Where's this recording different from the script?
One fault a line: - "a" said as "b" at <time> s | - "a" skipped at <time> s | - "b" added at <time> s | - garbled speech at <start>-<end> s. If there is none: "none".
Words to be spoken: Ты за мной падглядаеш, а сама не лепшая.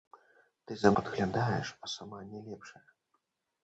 - "мной" skipped at 0.9 s